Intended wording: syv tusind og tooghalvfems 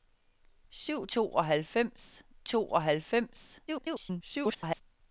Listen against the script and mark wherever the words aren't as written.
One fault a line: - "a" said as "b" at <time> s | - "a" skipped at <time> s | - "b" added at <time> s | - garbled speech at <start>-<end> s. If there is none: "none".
- "tusind" said as "tooghalvfems" at 1.1 s
- garbled speech at 3.7-4.8 s